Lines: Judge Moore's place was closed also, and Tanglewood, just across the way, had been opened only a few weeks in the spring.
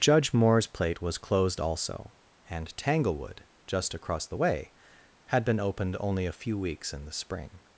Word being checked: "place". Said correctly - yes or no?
no